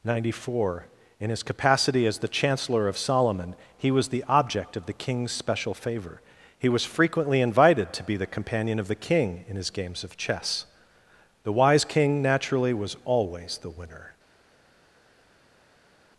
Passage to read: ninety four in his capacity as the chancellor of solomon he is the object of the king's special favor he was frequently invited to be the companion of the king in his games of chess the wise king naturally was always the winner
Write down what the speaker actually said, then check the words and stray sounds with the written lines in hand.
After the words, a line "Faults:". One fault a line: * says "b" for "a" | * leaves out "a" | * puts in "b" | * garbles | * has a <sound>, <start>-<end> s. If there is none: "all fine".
ninety four in his capacity as the chancellor of solomon he was the object of the king's special favor he was frequently invited to be the companion of the king in his games of chess the wise king naturally was always the winner
Faults:
* says "was" for "is"